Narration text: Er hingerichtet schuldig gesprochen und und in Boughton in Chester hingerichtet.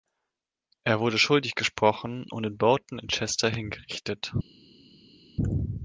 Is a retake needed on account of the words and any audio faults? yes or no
yes